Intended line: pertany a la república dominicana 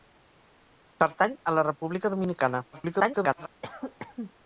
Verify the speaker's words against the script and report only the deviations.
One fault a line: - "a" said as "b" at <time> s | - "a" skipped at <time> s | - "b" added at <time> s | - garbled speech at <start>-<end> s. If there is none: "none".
- garbled speech at 2.7-3.5 s